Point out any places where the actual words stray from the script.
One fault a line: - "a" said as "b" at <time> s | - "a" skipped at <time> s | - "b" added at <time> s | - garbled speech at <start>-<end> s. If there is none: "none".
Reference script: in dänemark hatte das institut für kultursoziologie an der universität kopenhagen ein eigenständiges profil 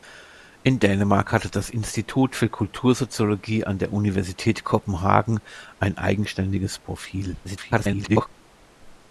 - garbled speech at 7.4-8.3 s